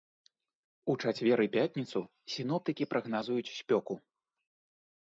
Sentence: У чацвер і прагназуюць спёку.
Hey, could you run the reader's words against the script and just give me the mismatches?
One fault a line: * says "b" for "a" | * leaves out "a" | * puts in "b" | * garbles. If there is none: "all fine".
* puts in "пятніцу сіноптыкі"